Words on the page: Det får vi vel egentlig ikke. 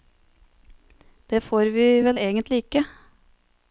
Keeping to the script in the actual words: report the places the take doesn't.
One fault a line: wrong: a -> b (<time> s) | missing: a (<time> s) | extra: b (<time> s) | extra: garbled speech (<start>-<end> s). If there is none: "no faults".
no faults